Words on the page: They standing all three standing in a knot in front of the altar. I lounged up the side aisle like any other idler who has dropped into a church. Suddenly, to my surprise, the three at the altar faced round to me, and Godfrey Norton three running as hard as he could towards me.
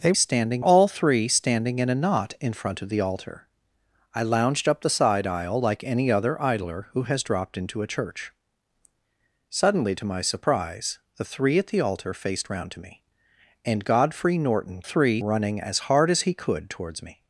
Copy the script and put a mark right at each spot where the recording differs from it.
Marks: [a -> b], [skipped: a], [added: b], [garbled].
They standing all three standing in a knot in front of the altar. I lounged up the side aisle like any other idler who has dropped into a church. Suddenly, to my surprise, the three at the altar faced round to me, and Godfrey Norton three running as hard as he could towards me.